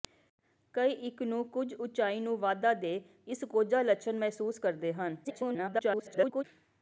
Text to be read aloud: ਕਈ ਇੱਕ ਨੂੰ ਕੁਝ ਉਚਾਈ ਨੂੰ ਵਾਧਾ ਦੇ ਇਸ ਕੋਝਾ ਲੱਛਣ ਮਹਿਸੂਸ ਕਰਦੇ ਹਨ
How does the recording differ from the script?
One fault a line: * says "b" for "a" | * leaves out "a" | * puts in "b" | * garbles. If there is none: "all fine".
* garbles